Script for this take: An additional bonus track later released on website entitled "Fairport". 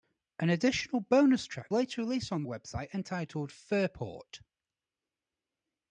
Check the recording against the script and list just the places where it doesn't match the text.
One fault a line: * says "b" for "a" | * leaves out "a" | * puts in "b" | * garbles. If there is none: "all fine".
all fine